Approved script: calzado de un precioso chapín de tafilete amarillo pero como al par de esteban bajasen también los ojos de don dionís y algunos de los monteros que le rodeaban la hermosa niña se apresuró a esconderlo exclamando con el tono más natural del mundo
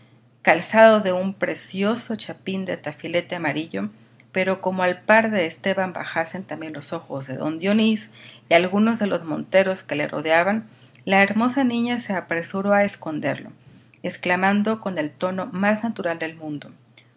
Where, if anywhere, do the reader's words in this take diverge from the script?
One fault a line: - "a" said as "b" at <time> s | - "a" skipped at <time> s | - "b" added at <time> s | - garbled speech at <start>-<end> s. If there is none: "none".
none